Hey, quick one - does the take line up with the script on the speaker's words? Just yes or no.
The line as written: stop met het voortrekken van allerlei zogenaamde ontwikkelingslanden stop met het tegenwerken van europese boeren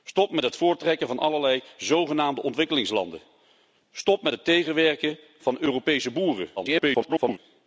no